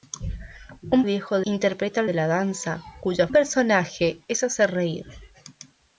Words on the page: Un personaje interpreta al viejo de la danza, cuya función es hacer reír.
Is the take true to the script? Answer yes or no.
no